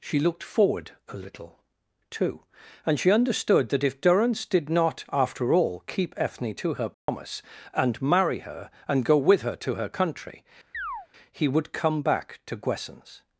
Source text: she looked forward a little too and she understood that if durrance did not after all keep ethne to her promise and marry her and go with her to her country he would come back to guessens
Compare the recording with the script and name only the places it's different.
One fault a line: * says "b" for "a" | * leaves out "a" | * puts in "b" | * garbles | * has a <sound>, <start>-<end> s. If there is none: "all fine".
* has a dropout, 6.9-7.1 s
* has a chirp, 10.7-11.1 s